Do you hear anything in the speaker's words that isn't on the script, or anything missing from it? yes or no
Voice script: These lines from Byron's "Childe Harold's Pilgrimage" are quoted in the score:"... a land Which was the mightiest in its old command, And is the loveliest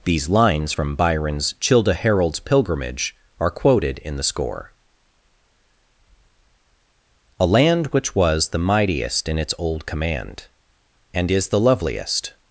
no